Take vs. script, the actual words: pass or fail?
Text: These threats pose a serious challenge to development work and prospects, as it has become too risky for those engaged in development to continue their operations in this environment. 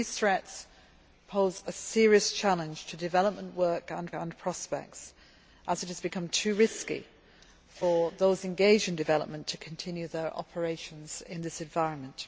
fail